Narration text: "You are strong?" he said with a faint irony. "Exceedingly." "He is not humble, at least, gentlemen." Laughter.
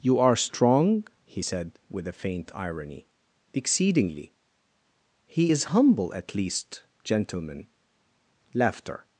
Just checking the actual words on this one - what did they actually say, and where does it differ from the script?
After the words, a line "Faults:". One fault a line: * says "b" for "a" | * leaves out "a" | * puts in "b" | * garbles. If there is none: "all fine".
"You are strong?" he said with a faint irony. "Exceedingly." "He is humble, at least, gentlemen." Laughter.
Faults:
* leaves out "not"